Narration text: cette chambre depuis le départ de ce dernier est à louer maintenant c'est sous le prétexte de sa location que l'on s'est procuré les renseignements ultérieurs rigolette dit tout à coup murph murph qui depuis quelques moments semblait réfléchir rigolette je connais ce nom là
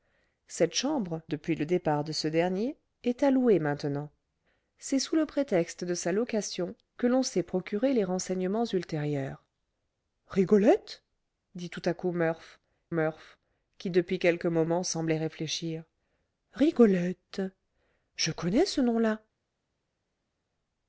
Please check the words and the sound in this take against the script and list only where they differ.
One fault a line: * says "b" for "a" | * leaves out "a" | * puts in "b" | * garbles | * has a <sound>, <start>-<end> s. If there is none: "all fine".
all fine